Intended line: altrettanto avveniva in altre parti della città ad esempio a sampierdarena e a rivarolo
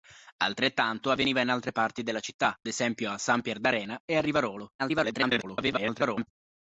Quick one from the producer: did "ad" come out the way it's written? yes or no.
no